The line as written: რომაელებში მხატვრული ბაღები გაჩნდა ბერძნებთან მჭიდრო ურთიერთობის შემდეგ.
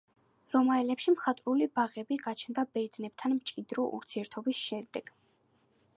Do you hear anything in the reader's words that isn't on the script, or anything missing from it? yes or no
no